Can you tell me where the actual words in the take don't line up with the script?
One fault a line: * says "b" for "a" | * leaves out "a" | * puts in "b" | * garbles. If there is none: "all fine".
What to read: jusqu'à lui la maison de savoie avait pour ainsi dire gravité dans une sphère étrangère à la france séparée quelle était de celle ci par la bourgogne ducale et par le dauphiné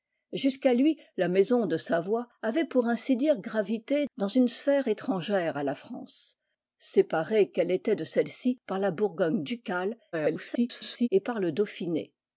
* garbles